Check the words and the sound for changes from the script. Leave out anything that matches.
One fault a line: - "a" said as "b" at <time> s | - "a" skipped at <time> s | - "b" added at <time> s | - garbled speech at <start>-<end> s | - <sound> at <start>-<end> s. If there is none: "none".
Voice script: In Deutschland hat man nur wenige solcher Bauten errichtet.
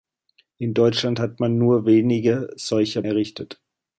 - "Bauten" skipped at 3.0 s